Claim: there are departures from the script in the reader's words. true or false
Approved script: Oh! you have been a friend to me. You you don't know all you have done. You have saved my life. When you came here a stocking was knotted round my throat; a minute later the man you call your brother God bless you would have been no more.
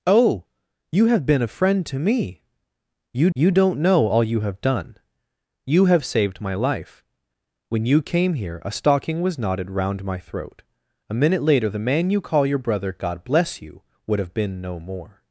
false